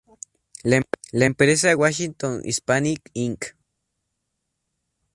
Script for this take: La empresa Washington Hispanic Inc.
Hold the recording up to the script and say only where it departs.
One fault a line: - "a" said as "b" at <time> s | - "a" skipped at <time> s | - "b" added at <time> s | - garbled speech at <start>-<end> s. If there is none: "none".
none